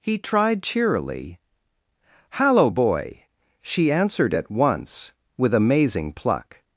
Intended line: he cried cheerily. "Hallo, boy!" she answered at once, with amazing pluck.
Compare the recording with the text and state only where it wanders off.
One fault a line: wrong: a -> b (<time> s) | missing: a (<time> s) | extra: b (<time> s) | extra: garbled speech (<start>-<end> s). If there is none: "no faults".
wrong: cried -> tried (0.2 s)